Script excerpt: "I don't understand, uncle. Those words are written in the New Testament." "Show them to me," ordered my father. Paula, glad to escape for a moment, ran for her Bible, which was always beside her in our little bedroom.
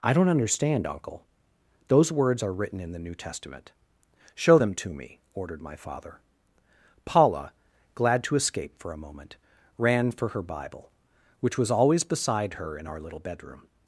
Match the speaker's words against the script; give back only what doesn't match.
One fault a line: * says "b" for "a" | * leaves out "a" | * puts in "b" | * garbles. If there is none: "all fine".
all fine